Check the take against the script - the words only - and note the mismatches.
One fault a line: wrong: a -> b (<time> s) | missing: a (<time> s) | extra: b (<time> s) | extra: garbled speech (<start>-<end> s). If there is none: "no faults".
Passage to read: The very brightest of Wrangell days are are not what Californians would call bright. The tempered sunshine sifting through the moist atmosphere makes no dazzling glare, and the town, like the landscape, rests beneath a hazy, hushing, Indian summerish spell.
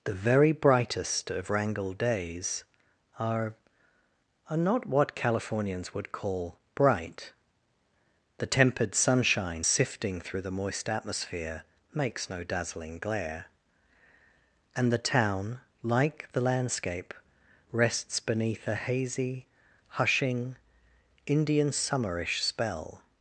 no faults